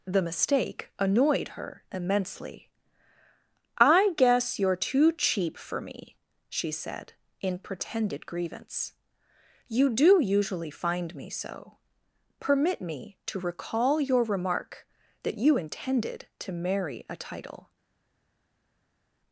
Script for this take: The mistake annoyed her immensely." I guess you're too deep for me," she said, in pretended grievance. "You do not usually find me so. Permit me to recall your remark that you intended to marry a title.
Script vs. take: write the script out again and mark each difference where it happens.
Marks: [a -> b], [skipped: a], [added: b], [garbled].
The mistake annoyed her immensely." I guess you're too [deep -> cheap] for me," she said, in pretended grievance. "You do [skipped: not] usually find me so. Permit me to recall your remark that you intended to marry a title.